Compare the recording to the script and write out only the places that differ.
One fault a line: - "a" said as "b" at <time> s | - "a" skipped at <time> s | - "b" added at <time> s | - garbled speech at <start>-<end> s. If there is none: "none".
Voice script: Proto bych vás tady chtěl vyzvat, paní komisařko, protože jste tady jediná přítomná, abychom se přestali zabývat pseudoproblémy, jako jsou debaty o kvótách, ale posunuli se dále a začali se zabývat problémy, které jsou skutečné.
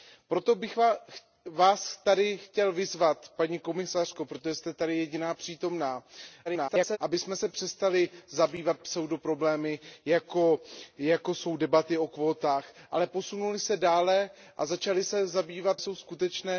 - garbled speech at 6.5-7.0 s
- "problémy které" skipped at 15.8 s